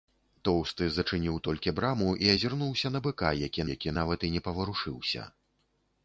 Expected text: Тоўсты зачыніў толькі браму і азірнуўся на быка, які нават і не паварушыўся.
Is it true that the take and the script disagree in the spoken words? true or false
true